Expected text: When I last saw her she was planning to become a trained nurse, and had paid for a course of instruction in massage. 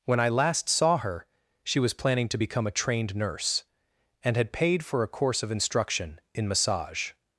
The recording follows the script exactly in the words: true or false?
true